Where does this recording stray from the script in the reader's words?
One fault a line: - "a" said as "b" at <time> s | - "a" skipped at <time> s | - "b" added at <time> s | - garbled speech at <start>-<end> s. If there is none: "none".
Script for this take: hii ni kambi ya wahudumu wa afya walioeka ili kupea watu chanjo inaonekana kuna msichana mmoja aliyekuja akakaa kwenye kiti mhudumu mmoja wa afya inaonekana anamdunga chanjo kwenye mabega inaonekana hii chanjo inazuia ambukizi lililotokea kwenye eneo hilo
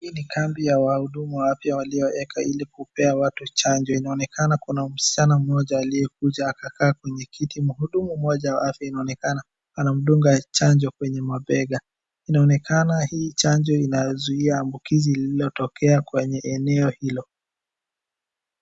none